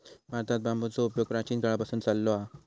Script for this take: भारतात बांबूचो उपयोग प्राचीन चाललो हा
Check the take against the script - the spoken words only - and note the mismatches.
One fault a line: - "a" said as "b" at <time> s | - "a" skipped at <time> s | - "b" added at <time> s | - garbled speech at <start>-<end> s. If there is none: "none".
- "काळापासून" added at 1.6 s